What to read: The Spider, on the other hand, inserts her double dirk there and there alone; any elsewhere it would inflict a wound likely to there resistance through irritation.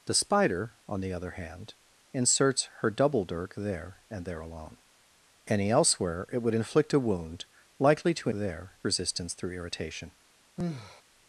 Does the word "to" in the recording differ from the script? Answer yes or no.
no